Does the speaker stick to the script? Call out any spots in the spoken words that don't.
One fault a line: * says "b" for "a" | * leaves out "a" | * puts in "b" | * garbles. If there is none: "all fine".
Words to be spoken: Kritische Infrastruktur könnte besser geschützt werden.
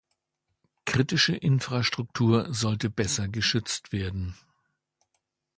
* says "sollte" for "könnte"